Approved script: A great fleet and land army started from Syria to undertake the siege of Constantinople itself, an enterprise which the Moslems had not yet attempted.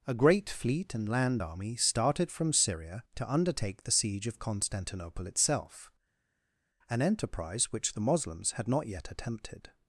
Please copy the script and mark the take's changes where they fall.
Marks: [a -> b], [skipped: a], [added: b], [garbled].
A great fleet and land army started from Syria to undertake the siege of Constantinople itself, an enterprise which the Moslems had not yet attempted.